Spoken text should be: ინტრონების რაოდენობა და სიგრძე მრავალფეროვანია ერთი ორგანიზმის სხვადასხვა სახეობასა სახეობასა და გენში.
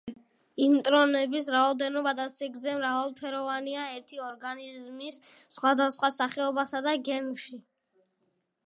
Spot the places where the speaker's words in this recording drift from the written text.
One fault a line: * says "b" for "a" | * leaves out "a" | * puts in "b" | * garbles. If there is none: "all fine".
* leaves out "სახეობასა"